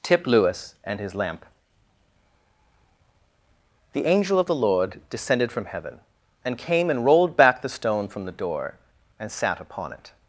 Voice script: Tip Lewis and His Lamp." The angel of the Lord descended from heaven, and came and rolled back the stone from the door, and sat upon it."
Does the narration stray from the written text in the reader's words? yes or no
no